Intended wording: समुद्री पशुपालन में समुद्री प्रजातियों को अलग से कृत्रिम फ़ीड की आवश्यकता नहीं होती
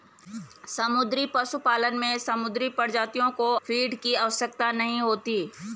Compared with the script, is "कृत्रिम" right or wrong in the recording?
wrong